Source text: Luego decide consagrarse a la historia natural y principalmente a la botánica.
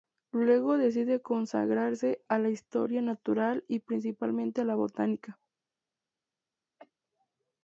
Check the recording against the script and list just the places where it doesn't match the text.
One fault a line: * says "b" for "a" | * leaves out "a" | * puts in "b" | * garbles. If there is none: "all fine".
all fine